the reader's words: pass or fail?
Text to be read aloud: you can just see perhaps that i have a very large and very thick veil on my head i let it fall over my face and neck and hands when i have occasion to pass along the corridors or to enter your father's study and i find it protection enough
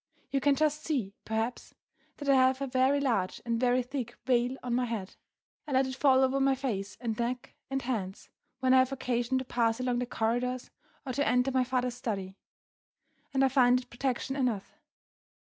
fail